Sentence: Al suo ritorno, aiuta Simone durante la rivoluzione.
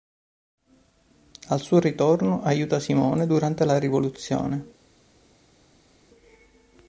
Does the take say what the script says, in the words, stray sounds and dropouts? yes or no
yes